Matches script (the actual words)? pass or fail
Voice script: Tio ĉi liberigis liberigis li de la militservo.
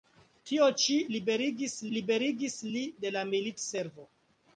pass